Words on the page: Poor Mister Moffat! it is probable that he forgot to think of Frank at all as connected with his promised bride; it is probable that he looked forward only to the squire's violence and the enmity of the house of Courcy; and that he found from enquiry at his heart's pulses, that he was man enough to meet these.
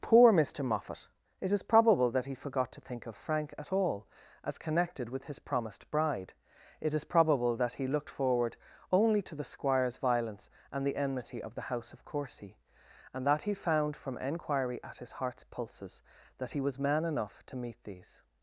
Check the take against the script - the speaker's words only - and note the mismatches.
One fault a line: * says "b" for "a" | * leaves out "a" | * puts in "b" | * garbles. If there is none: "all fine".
all fine